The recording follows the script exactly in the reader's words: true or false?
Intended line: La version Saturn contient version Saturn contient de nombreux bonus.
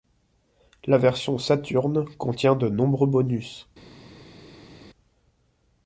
false